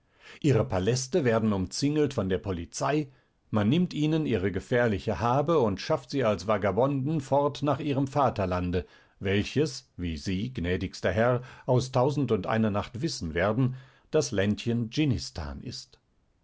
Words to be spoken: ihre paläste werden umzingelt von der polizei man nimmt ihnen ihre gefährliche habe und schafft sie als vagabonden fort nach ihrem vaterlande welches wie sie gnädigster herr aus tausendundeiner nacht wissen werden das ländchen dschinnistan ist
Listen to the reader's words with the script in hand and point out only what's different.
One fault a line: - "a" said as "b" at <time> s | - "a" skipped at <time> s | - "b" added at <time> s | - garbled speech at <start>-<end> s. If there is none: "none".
none